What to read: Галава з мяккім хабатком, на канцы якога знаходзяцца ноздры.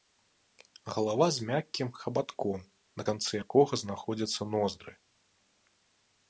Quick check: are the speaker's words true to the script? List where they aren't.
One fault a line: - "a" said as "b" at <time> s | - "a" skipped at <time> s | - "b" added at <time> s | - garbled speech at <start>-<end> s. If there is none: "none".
none